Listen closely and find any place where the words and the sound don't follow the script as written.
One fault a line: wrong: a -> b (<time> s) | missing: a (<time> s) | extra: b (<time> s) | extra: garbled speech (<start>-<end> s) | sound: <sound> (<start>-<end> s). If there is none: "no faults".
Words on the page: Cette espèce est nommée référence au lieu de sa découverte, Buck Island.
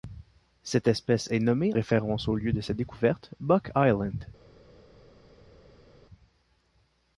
no faults